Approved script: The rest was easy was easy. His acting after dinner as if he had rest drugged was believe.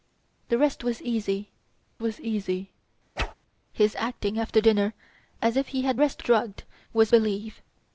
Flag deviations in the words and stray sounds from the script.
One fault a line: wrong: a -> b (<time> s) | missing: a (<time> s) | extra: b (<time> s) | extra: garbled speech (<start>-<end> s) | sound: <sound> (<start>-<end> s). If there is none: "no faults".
sound: whoosh (3.2-3.3 s)